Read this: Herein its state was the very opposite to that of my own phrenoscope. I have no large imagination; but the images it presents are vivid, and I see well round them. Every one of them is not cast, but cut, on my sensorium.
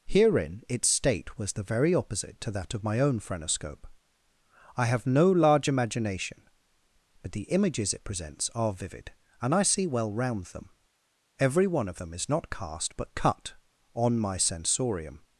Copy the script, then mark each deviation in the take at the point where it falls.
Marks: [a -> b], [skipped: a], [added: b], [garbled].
Herein its state was the very opposite to that of my own phrenoscope. I have no large imagination; but the images it presents are vivid, and I see well round them. Every one of them is not cast, but cut, on my sensorium.